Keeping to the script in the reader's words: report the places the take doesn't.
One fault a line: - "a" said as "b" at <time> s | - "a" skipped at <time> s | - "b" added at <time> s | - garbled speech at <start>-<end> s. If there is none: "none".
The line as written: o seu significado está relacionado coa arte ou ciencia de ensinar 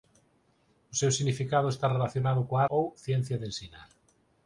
- "arte" skipped at 2.6 s